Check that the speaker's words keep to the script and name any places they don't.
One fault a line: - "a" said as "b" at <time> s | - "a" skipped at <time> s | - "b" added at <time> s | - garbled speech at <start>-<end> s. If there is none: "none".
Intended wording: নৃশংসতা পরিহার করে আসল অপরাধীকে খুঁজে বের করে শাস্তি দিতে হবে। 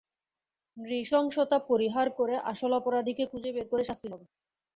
- "দিতে" skipped at 4.1 s